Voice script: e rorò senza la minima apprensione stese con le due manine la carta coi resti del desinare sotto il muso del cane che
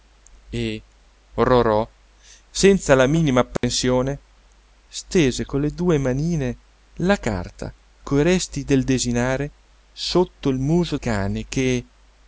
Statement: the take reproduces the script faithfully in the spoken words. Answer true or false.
false